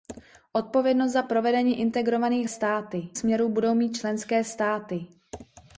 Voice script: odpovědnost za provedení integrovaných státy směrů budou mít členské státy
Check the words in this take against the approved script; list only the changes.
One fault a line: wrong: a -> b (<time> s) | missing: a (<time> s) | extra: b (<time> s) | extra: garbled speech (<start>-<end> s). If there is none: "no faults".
no faults